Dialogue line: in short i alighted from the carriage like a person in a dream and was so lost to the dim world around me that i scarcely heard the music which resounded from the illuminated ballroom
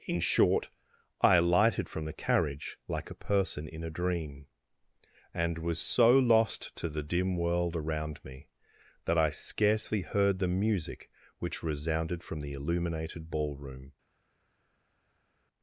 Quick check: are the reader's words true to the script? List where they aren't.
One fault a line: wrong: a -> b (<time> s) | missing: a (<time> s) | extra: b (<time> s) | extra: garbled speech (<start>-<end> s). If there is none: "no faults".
no faults